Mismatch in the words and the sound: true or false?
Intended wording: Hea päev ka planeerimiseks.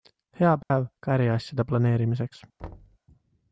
true